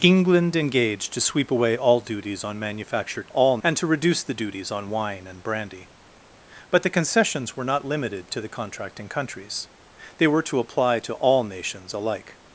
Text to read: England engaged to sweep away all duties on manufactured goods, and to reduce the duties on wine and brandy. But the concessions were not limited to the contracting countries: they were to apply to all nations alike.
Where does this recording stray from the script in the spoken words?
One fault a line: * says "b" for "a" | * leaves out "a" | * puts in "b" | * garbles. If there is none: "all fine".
* says "all" for "goods"